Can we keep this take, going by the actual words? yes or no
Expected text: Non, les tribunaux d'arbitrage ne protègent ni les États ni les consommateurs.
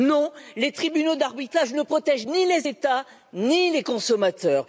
yes